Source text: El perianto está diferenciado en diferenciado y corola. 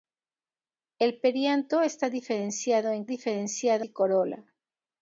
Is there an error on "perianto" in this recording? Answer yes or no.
no